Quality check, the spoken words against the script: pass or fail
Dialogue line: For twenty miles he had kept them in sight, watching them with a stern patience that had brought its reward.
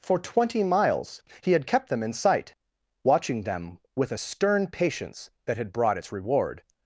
pass